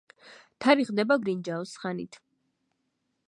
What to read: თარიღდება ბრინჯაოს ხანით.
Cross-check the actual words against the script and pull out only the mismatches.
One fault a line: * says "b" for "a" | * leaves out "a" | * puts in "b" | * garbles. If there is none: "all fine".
all fine